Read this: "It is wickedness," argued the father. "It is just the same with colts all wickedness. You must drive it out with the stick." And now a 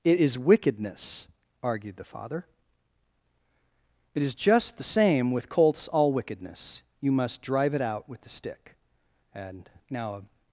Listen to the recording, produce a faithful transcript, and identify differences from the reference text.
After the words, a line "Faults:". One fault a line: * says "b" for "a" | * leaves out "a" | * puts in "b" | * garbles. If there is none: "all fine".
"It is wickedness," argued the father. "It is just the same with colts all wickedness. You must drive it out with the stick." And now a
Faults:
all fine